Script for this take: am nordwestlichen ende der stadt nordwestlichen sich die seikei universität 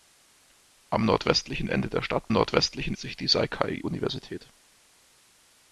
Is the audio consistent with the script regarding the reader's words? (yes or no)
yes